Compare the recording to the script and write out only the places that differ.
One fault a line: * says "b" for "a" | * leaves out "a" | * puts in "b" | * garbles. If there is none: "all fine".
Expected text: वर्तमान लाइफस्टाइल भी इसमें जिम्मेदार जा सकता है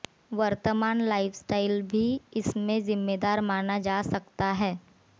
* puts in "माना"